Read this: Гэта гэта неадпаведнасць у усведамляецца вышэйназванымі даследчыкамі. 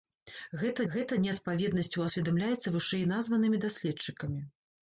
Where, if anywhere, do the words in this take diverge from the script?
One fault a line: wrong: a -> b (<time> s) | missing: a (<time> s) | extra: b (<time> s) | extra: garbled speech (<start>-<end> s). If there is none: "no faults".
no faults